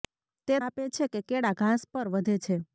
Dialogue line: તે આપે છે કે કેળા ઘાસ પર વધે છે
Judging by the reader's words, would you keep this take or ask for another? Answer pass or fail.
pass